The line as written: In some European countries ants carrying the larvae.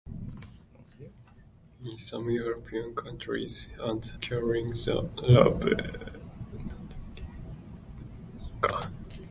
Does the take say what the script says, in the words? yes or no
yes